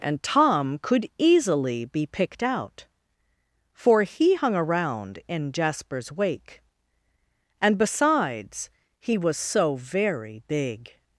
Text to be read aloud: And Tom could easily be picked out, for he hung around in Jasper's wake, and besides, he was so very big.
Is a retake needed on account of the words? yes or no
no